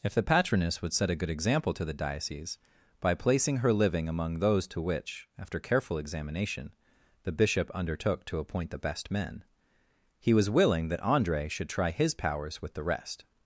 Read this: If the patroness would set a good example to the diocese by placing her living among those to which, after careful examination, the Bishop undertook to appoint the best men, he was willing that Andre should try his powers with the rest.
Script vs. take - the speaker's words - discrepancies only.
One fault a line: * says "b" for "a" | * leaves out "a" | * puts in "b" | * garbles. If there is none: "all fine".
all fine